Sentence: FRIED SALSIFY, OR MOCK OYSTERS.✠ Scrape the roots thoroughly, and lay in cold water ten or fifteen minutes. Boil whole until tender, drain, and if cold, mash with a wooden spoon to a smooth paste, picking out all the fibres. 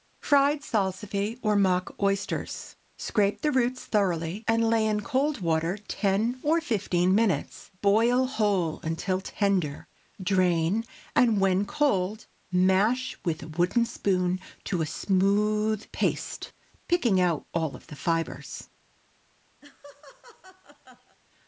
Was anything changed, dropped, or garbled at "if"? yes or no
yes